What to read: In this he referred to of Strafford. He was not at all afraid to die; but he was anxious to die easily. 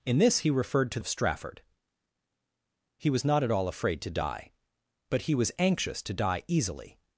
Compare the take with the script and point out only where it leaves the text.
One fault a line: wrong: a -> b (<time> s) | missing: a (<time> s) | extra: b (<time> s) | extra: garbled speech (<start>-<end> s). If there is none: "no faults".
no faults